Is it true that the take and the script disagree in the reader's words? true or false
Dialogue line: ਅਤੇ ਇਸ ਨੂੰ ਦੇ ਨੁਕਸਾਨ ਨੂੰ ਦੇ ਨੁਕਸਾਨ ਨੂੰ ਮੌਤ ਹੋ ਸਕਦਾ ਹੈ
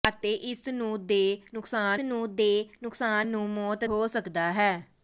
false